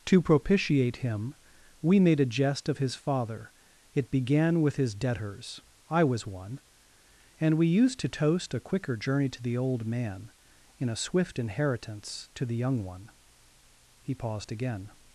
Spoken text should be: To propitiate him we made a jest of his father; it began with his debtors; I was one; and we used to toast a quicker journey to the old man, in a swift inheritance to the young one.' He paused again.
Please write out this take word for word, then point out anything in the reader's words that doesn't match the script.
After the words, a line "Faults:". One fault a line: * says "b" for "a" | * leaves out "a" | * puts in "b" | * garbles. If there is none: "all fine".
To propitiate him we made a jest of his father; it began with his debtors; I was one; and we used to toast a quicker journey to the old man, in a swift inheritance to the young one.' He paused again.
Faults:
all fine